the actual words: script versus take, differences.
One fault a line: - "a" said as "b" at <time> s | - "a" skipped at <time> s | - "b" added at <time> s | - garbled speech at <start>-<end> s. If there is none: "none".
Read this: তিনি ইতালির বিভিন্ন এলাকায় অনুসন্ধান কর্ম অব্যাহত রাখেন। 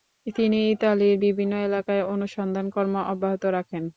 none